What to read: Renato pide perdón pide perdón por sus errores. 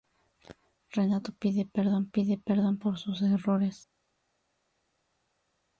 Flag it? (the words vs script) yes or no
no